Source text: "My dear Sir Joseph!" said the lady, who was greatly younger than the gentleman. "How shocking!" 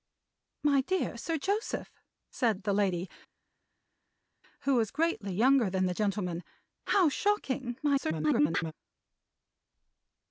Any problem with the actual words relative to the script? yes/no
yes